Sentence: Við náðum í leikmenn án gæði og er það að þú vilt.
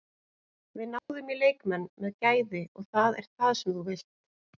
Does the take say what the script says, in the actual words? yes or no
no